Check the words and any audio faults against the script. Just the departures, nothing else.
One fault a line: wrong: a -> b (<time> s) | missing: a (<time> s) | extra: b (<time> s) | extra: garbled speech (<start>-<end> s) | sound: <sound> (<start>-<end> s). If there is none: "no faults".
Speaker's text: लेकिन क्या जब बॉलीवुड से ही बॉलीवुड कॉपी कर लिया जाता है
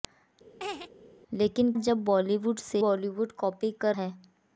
sound: laugh (0.6-0.9 s)
missing: क्या (1.7 s)
missing: ही (2.8 s)
missing: लिया जाता (4.0 s)